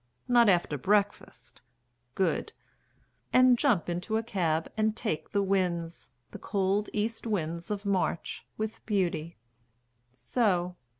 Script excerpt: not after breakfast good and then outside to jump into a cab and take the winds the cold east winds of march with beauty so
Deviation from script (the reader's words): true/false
true